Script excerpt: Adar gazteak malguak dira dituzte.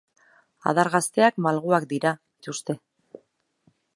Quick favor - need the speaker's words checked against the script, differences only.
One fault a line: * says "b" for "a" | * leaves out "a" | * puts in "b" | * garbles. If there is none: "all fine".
all fine